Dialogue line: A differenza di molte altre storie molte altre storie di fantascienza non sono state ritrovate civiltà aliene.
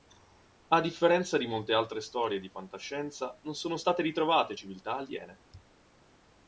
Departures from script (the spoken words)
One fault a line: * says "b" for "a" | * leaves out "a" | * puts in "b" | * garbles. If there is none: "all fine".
* leaves out "molte altre storie"